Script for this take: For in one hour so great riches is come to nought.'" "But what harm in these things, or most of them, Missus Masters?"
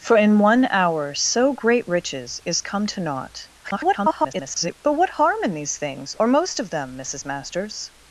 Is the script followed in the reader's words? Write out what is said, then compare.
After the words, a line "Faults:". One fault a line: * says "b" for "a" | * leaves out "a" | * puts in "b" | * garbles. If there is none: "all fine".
For in one hour so great riches is come to nought.'" [garbled] "But what harm in these things, or most of them, Missus Masters?"
Faults:
* garbles